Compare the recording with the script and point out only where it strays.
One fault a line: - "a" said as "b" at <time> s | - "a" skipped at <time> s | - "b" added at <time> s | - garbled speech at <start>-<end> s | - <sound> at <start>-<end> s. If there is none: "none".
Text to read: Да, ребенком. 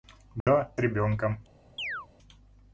- dropout at 0.4-0.5 s
- chirp at 1.8-2.1 s